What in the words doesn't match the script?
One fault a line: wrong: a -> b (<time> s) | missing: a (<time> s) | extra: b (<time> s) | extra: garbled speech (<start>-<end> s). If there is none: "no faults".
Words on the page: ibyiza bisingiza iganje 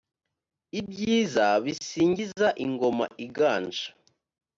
extra: ingoma (2.6 s)